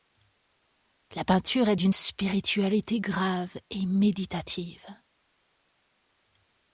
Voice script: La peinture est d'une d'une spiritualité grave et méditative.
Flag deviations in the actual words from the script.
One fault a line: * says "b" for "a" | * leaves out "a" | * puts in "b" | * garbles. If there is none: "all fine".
* leaves out "d'une"